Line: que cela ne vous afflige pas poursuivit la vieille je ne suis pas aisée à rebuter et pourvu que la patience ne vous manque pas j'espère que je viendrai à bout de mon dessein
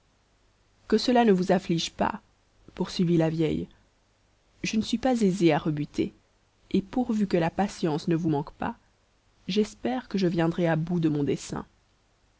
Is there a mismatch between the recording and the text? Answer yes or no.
no